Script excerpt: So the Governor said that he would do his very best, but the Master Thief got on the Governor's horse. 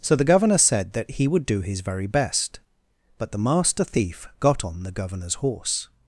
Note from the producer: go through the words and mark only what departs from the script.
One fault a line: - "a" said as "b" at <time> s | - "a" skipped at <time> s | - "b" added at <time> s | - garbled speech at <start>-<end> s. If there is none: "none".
none